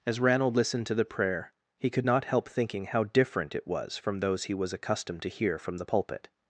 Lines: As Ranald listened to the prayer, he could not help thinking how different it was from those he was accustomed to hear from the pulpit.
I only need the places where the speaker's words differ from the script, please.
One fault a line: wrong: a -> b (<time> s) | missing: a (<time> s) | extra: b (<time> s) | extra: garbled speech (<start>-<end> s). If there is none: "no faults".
no faults